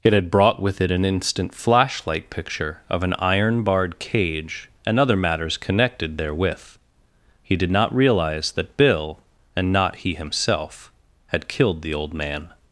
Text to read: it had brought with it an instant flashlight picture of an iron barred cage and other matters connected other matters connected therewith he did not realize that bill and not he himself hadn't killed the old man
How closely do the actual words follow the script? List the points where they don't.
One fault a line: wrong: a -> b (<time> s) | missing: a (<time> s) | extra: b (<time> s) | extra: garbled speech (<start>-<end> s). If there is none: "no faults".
missing: other matters connected (6.2 s)
wrong: hadn't -> had (11.3 s)